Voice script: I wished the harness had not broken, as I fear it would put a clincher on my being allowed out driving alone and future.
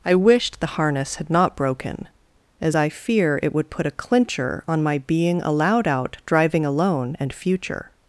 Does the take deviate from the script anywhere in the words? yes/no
no